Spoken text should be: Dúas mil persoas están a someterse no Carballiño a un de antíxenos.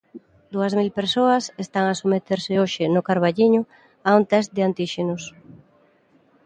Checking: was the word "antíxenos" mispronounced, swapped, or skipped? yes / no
no